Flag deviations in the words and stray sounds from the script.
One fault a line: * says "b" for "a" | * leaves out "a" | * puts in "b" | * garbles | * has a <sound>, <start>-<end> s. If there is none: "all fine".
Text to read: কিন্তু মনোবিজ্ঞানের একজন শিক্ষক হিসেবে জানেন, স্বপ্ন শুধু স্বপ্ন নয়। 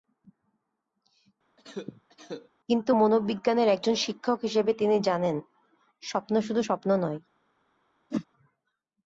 * has a cough, 1.6-2.5 s
* puts in "তিনি"
* has a whoosh, 8.1-8.3 s